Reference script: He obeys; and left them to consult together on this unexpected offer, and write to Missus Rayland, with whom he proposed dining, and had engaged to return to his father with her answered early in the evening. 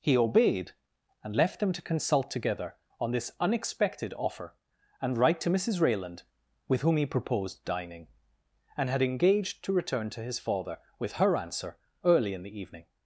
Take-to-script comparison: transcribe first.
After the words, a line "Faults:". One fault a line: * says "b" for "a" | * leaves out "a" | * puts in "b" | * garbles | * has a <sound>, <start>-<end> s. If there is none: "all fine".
He obeyed; and left them to consult together on this unexpected offer, and write to Missus Rayland, with whom he proposed dining, and had engaged to return to his father with her answer early in the evening.
Faults:
* says "obeyed" for "obeys"
* says "answer" for "answered"